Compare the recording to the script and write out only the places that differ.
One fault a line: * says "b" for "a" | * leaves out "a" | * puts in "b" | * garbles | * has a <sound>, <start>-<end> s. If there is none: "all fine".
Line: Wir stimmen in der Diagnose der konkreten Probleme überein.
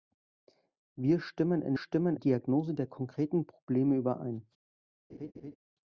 * says "stimmen" for "der"
* has a laugh, 5.1-5.6 s